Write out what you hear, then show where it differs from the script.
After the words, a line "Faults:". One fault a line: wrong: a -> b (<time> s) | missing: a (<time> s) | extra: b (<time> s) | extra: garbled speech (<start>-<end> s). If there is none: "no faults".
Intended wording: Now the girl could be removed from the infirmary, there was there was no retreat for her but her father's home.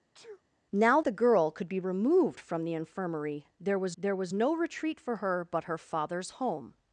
Now the girl could be removed from the infirmary, there was there was no retreat for her but her father's home.
Faults:
no faults